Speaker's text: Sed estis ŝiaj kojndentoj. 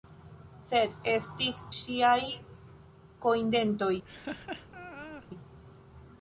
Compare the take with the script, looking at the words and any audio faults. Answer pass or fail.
fail